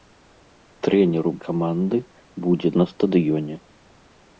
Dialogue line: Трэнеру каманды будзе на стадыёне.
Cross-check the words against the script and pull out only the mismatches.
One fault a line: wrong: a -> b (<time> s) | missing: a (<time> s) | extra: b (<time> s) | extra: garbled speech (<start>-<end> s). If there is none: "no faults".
no faults